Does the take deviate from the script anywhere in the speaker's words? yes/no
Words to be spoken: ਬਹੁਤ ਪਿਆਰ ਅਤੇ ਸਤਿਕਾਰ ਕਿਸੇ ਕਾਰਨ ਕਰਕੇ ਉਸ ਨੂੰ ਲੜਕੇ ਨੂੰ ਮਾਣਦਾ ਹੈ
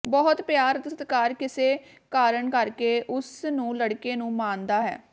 no